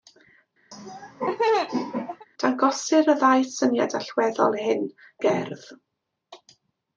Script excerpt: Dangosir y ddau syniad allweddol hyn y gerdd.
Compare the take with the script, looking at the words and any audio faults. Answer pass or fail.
fail